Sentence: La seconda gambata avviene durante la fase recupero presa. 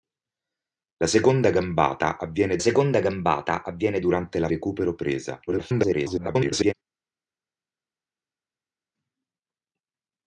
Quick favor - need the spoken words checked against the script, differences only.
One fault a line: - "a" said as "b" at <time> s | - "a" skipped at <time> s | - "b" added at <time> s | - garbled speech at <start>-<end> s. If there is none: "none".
- "seconda gambata avviene" added at 2.6 s
- "fase" skipped at 4.5 s
- garbled speech at 5.5-6.7 s